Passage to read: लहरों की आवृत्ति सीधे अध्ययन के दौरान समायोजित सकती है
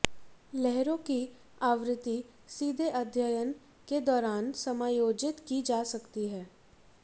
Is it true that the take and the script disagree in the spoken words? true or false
true